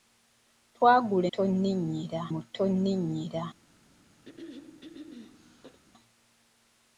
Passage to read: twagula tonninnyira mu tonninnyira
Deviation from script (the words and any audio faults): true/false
true